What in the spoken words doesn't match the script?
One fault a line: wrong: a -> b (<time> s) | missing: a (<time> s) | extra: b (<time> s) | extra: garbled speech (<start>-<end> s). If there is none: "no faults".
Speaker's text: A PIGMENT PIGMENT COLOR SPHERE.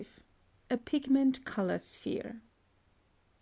missing: PIGMENT (1.4 s)